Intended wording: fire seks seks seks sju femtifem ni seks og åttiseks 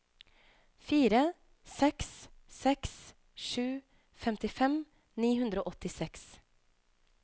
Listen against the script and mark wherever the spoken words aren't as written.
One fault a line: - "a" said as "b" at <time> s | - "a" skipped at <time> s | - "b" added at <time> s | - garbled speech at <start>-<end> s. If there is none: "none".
- "seks" skipped at 3.0 s
- "seks" said as "hundre" at 5.4 s